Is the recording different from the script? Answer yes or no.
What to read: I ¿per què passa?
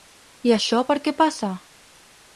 yes